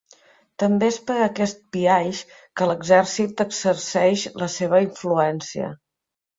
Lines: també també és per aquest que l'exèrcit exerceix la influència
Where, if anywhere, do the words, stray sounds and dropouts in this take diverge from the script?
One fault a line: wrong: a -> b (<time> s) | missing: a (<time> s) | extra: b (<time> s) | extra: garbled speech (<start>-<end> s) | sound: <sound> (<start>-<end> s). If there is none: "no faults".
missing: també (0.9 s)
extra: biaix (1.8 s)
extra: seva (4.6 s)